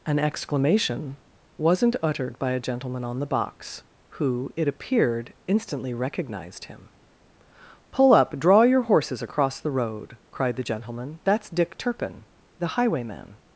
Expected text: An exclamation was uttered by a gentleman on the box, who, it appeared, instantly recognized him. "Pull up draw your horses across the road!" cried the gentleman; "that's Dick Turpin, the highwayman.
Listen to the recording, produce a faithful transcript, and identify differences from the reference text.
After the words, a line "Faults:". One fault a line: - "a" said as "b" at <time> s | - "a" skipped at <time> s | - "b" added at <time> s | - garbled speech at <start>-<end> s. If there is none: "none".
An exclamation wasn't uttered by a gentleman on the box, who, it appeared, instantly recognized him. "Pull up draw your horses across the road!" cried the gentleman; "that's Dick Turpin, the highwayman.
Faults:
- "was" said as "wasn't" at 1.6 s